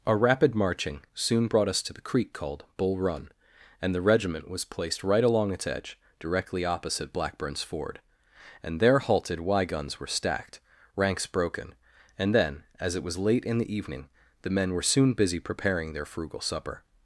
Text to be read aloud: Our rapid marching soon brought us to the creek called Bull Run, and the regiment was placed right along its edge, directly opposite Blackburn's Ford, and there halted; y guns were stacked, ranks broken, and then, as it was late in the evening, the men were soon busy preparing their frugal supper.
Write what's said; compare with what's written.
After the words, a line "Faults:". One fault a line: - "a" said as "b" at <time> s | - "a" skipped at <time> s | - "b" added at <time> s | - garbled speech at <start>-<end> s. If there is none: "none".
Our rapid marching soon brought us to the creek called Bull Run, and the regiment was placed right along its edge, directly opposite Blackburn's Ford, and there halted; y guns were stacked, ranks broken, and then, as it was late in the evening, the men were soon busy preparing their frugal supper.
Faults:
none